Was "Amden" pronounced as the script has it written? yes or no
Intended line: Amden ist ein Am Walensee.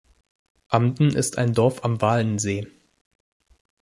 yes